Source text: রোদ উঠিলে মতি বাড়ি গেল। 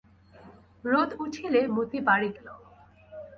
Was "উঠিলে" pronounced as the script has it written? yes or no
yes